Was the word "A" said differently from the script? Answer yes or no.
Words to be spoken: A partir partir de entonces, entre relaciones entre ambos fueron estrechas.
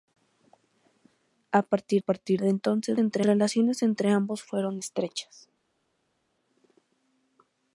no